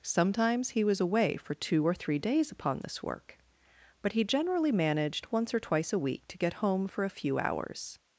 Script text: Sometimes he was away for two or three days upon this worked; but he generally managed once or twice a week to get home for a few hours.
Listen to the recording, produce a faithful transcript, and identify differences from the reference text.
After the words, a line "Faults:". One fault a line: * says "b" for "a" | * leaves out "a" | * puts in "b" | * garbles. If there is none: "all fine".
Sometimes he was away for two or three days upon this work; but he generally managed once or twice a week to get home for a few hours.
Faults:
* says "work" for "worked"